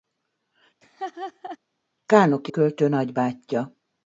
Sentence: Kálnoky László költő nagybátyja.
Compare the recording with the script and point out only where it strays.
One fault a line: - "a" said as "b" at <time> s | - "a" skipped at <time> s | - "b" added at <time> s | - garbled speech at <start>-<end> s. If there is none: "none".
- "László" skipped at 2.5 s